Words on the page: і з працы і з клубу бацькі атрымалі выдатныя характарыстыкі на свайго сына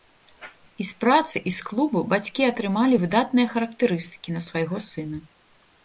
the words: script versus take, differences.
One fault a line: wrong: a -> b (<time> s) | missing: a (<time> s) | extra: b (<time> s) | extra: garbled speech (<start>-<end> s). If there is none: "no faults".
no faults